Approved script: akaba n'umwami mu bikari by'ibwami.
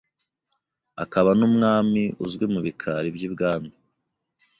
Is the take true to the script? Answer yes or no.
no